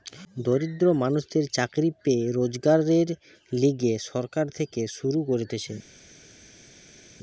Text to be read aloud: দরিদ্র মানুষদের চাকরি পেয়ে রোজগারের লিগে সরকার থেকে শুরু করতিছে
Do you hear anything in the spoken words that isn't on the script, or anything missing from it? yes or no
no